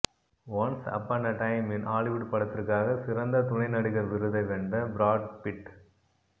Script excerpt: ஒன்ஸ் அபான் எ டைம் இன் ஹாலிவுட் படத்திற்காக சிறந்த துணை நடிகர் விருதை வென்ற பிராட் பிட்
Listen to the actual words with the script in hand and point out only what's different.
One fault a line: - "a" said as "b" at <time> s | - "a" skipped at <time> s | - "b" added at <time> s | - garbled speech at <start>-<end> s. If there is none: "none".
none